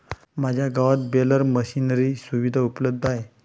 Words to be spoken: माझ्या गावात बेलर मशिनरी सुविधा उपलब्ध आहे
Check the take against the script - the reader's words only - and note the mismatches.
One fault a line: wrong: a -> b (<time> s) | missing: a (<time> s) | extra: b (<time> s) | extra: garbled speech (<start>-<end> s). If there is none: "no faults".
no faults